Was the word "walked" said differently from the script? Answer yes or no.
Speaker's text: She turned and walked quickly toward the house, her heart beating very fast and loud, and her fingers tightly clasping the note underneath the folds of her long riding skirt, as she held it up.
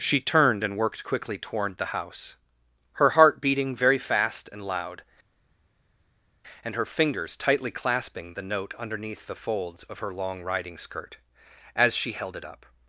yes